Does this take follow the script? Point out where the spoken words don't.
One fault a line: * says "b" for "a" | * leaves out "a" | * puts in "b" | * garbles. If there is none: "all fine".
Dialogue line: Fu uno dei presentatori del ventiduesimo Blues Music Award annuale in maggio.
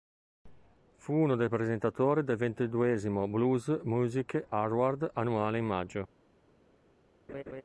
all fine